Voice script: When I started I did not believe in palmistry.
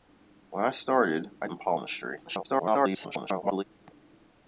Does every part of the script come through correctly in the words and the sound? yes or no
no